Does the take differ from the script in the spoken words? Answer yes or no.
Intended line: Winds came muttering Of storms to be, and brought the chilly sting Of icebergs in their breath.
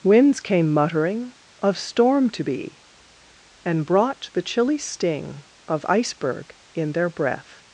yes